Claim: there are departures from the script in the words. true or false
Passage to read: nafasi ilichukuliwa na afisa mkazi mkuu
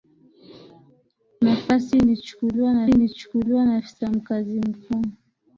true